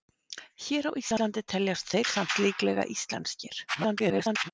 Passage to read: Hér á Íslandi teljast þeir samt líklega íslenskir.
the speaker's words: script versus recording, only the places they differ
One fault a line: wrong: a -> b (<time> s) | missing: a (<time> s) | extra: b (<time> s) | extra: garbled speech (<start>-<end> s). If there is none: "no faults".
extra: garbled speech (3.7-4.5 s)